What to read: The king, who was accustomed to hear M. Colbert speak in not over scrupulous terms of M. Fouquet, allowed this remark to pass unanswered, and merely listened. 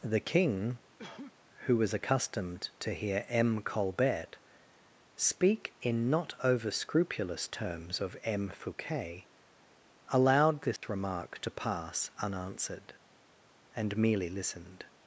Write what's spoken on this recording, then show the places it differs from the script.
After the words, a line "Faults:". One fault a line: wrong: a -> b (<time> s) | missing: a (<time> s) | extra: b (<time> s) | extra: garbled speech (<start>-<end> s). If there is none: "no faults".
The king, who was accustomed to hear M. Colbert speak in not over scrupulous terms of M. Fouquet, allowed this remark to pass unanswered, and merely listened.
Faults:
no faults